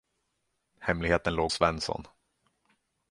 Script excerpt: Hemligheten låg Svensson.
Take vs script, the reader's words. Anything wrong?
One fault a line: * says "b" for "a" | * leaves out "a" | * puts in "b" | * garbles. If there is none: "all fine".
all fine